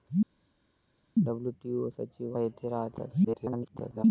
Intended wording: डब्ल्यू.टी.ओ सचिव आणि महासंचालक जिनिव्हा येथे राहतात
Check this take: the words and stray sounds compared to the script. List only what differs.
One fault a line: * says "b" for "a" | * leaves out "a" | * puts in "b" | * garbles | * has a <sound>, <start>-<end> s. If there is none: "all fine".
* leaves out "आणि महासंचालक जिनिव्हा"
* garbles